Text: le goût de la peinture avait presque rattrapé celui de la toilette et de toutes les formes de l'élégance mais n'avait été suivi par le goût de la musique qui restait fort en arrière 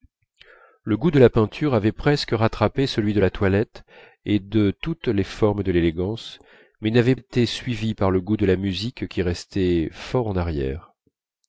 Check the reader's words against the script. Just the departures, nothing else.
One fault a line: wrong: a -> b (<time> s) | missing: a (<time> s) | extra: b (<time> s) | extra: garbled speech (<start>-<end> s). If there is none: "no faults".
no faults